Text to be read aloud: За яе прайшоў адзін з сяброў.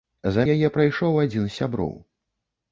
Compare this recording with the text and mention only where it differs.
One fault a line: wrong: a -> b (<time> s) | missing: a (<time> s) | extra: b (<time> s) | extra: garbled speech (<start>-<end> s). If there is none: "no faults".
no faults